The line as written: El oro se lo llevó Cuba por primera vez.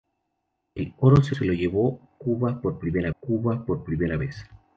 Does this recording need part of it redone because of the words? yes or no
yes